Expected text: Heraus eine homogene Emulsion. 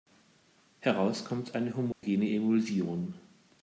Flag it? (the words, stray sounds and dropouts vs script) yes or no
yes